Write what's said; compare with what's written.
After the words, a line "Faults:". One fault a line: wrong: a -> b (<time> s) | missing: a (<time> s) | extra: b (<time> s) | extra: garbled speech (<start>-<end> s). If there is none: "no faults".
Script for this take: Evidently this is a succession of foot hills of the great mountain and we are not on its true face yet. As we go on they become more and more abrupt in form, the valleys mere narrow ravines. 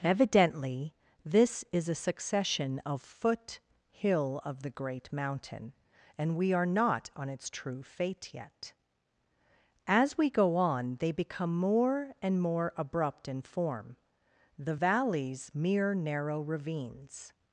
Evidently this is a succession of foot hill of the great mountain and we are not on its true fate yet. As we go on they become more and more abrupt in form, the valleys mere narrow ravines.
Faults:
wrong: hills -> hill (3.9 s)
wrong: face -> fate (7.8 s)